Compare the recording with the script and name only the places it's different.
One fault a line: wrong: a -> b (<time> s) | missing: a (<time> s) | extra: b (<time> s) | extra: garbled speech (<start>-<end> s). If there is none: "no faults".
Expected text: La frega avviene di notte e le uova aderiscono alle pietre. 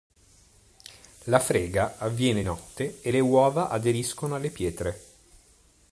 missing: di (2.4 s)